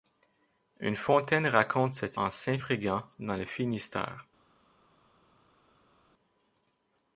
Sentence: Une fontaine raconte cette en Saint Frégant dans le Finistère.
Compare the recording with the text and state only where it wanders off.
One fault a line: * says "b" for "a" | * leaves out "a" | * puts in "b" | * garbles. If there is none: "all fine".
all fine